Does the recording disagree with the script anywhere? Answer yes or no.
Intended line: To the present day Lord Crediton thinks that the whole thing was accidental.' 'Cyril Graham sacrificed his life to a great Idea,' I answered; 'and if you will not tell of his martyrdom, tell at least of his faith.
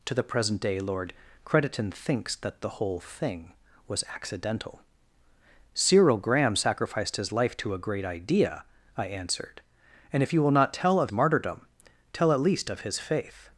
yes